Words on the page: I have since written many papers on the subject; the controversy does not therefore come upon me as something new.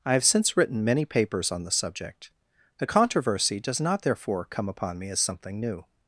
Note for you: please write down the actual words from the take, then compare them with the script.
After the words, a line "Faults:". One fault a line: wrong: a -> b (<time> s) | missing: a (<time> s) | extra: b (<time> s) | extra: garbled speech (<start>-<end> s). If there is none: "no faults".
I have since written many papers on the subject; the controversy does not therefore come upon me as something new.
Faults:
no faults